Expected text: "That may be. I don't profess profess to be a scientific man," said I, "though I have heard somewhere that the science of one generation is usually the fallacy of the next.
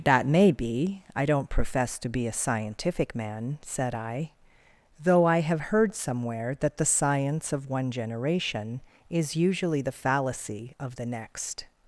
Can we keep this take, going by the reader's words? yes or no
no